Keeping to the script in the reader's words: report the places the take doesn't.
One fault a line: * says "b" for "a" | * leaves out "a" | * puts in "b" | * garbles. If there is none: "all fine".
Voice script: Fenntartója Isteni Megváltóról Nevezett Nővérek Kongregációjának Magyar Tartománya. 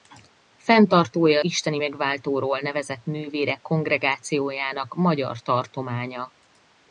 all fine